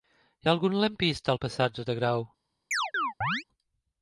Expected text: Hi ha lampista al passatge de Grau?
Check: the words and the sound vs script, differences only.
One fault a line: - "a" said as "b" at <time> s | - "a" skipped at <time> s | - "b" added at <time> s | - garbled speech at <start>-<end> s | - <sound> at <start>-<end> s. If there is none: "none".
- "algun" added at 0.5 s
- chirp at 2.7-3.4 s